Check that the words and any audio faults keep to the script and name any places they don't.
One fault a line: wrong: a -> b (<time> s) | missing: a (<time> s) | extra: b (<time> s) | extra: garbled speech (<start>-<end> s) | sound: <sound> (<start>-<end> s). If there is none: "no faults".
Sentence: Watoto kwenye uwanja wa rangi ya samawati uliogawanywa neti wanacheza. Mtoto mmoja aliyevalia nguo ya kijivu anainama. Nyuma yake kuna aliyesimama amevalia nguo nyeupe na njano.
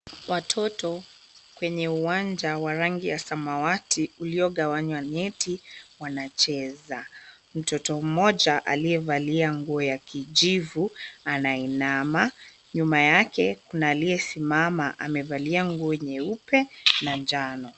no faults